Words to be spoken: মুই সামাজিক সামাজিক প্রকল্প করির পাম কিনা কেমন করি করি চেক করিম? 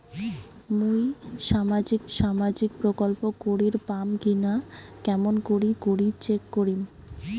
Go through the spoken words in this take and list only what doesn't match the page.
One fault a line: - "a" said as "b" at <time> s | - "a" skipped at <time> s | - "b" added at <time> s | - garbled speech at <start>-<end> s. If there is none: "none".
none